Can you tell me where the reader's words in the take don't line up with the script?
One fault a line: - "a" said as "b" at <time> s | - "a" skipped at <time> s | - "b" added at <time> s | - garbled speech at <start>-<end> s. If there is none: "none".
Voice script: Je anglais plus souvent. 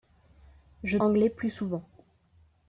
none